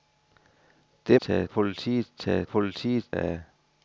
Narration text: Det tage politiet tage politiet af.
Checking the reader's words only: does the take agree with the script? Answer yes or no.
yes